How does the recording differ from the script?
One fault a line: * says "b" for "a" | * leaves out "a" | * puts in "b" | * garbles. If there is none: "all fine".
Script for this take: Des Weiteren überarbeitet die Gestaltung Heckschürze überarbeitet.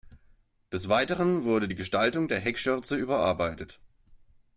* says "wurde" for "überarbeitet"
* puts in "der"